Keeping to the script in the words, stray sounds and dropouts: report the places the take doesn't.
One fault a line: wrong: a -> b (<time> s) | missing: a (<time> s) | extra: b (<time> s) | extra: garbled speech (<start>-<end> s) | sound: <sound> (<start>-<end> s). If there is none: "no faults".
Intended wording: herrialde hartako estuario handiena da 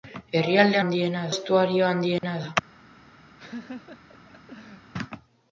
wrong: hartako -> handiena (0.8 s)
sound: dropout (2.2-2.2 s)
sound: laugh (3.4-4.9 s)